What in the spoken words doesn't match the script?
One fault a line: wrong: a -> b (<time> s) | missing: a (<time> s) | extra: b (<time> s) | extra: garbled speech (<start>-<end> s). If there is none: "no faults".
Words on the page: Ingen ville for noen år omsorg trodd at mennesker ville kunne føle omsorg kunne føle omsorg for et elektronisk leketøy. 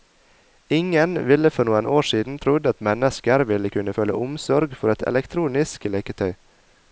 wrong: omsorg -> siden (2.1 s)
missing: kunne føle omsorg (4.7 s)